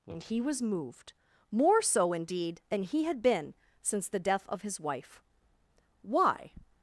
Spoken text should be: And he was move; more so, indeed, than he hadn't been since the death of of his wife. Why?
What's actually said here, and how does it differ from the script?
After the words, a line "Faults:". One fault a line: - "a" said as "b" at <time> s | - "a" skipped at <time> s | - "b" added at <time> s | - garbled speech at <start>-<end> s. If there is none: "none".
And he was moved; more so, indeed, than he had been since the death of his wife. Why?
Faults:
- "move" said as "moved" at 0.6 s
- "hadn't" said as "had" at 3.0 s
- "of" skipped at 4.6 s